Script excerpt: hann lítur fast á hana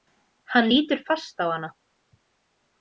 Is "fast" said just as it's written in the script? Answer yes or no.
yes